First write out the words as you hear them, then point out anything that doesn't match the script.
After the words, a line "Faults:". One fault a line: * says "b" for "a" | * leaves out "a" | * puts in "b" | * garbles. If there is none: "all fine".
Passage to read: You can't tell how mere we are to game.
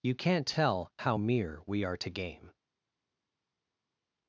You can't tell how mere we are to game.
Faults:
all fine